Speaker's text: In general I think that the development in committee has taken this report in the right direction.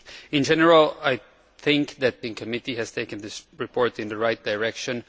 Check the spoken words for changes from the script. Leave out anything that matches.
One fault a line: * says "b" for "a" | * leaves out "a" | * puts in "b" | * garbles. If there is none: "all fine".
* leaves out "the development"